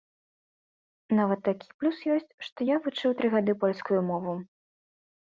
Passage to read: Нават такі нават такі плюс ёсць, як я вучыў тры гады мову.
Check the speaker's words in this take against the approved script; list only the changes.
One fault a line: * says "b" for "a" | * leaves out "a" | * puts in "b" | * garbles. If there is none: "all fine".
* leaves out "нават такі"
* says "што" for "як"
* puts in "польскую"